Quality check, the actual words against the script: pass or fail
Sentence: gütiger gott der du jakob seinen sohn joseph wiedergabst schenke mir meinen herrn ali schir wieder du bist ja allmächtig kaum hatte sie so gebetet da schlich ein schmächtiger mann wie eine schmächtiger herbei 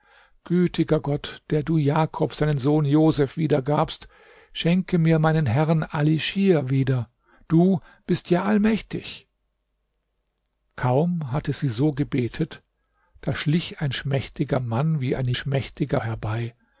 pass